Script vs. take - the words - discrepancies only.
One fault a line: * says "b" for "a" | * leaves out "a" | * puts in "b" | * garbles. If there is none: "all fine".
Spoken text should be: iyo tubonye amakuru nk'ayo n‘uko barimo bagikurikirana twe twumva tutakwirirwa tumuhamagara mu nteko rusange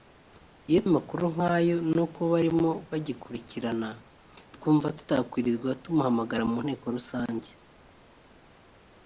* leaves out "tubonye"
* leaves out "twe"